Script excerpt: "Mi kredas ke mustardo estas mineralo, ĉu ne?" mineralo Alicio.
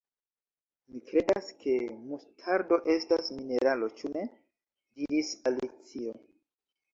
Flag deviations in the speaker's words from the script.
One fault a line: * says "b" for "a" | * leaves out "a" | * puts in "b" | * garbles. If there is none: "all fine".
* says "diris" for "mineralo"